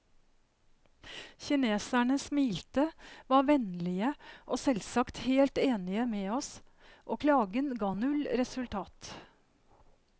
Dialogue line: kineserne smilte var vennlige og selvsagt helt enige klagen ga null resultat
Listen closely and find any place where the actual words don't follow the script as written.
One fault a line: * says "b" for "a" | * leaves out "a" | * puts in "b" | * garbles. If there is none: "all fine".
* puts in "med oss og"